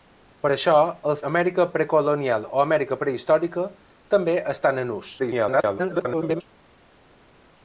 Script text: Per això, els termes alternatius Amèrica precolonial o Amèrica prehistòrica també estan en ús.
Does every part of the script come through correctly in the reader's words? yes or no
no